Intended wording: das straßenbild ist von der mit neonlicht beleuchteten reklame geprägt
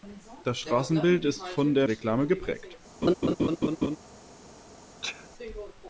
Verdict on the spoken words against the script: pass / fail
fail